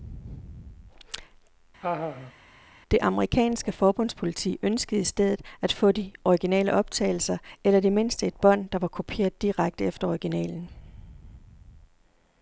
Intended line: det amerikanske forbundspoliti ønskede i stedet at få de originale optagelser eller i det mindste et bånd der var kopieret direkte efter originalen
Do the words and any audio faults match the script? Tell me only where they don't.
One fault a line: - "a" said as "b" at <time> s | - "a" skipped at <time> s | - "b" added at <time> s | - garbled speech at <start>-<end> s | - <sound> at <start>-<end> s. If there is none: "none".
- laugh at 1.8-2.3 s